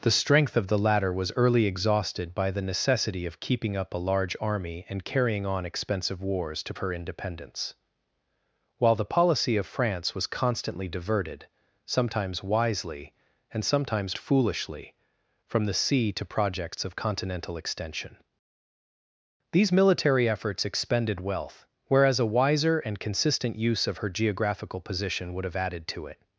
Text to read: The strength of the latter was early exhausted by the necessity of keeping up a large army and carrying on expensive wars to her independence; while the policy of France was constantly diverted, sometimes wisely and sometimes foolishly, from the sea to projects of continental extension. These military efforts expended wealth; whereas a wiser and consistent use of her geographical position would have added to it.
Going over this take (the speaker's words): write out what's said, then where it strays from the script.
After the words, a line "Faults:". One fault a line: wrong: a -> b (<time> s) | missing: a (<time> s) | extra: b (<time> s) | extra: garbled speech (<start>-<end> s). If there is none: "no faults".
The strength of the latter was early exhausted by the necessity of keeping up a large army and carrying on expensive wars to her independence; while the policy of France was constantly diverted, sometimes wisely and sometimes foolishly, from the sea to projects of continental extension. These military efforts expended wealth; whereas a wiser and consistent use of her geographical position would have added to it.
Faults:
no faults